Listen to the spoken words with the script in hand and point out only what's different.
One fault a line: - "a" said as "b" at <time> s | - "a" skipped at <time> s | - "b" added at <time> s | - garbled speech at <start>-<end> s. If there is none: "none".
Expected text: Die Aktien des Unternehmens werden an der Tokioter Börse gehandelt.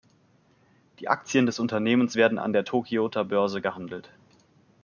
none